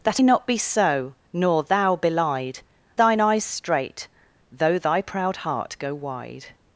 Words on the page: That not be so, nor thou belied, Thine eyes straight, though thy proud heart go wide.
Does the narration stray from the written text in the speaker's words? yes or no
no